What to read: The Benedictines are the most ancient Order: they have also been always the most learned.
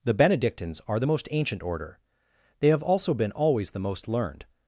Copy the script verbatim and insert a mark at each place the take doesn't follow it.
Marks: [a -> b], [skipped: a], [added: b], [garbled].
The Benedictines are the most ancient Order: they have also been always the most learned.